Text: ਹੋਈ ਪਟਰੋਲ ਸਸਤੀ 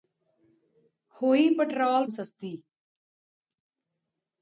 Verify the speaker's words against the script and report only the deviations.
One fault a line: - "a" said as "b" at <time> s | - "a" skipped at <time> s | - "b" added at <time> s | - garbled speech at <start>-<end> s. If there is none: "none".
none